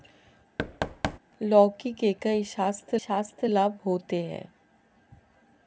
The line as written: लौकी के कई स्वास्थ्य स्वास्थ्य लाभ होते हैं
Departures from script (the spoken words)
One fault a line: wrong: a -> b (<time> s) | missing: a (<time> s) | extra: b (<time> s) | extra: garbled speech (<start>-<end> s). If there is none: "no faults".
no faults